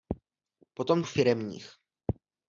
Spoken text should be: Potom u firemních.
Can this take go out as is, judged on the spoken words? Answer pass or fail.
pass